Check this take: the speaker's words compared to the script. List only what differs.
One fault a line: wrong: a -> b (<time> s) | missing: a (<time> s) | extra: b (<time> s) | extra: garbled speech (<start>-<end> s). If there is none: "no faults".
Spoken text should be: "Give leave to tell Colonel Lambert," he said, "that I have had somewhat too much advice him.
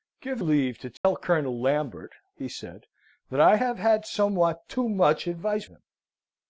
no faults